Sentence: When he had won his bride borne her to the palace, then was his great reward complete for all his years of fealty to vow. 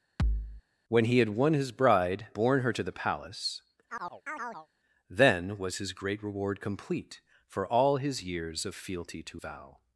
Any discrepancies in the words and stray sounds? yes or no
yes